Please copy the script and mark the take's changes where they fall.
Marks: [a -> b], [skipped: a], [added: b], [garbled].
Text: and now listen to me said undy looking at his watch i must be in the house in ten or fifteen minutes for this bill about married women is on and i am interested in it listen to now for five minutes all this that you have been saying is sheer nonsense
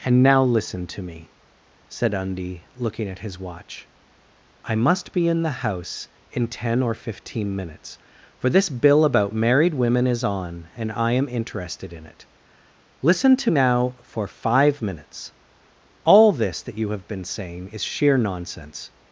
and now listen to me said undy looking at his watch i must be in the house in ten or fifteen minutes for this bill about married women is on and i am interested in it listen to now for five minutes all this that you have been saying is sheer nonsense